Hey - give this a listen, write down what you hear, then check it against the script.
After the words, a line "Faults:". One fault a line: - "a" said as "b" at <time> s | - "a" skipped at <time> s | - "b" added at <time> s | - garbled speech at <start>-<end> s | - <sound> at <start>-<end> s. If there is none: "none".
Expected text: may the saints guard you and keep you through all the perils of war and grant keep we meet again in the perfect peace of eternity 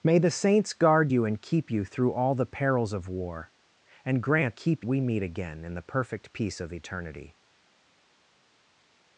may the saints guard you and keep you through all the perils of war and grant keep we meet again in the perfect peace of eternity
Faults:
none